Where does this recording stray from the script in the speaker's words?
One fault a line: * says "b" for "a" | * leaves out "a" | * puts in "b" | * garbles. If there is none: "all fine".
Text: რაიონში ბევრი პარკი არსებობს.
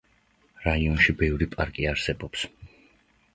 all fine